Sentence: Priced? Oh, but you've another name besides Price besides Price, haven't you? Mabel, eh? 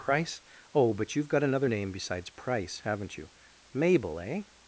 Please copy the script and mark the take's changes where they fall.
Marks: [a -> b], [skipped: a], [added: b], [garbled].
[Priced? -> Price] Oh, but you've [added: got] another name besides Price [skipped: besides Price,] haven't you? Mabel, eh?